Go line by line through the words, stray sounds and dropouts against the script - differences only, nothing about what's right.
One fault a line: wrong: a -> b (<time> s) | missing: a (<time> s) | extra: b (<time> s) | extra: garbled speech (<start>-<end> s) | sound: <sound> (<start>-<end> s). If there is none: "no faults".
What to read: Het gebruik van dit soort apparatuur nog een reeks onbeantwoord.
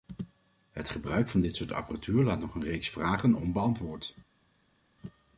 extra: laat (2.2 s)
extra: vragen (2.9 s)